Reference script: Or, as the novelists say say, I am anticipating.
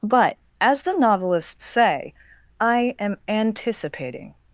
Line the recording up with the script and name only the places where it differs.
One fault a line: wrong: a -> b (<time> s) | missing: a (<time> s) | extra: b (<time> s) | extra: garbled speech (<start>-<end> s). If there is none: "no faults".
wrong: Or -> But (0.0 s)
missing: say (2.1 s)